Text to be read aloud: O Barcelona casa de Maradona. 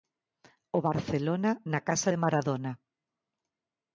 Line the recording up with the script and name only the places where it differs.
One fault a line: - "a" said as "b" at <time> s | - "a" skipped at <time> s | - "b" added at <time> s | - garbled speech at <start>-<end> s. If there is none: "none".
- "na" added at 1.7 s